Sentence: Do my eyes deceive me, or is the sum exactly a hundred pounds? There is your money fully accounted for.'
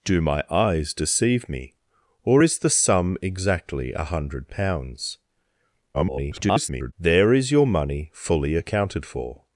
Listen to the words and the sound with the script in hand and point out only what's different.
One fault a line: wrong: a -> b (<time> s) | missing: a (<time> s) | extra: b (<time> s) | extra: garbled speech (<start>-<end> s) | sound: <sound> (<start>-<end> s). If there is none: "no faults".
extra: garbled speech (5.9-6.9 s)